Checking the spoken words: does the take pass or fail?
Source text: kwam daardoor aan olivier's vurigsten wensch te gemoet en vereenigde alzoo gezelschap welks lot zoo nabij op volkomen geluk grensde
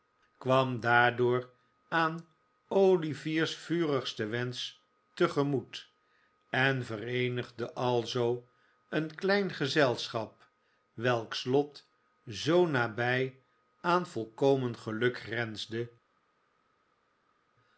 fail